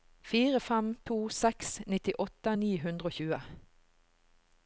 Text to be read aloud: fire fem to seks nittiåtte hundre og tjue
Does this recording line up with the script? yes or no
no